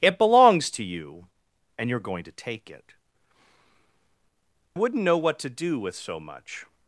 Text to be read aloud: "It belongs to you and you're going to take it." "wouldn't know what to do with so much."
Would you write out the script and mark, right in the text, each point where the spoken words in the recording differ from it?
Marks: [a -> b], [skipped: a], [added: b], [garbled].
"It belongs to you and you're going to take it." "wouldn't know what to do with so much."